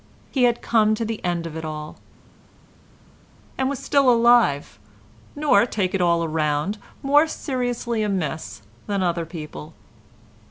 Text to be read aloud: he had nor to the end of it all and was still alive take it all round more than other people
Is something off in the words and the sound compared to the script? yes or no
yes